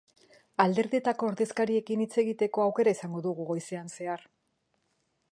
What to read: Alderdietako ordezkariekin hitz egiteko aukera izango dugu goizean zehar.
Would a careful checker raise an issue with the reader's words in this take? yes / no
no